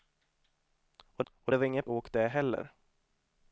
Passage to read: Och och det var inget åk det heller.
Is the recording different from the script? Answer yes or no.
no